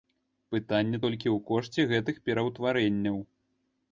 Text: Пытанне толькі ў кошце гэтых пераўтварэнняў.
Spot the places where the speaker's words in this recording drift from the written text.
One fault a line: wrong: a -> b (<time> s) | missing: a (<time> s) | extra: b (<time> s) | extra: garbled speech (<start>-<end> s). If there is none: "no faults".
no faults